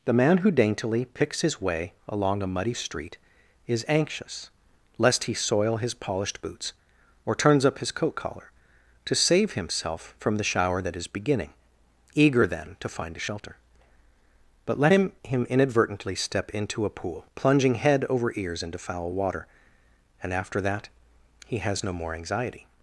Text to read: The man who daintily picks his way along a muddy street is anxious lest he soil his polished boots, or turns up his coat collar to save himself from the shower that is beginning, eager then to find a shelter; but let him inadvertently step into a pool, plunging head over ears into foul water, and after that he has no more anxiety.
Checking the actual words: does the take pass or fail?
fail